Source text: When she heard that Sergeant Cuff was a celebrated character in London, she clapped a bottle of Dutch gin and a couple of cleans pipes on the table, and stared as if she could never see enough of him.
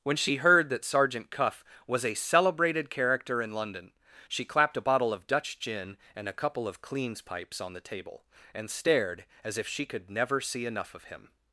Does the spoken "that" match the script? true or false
true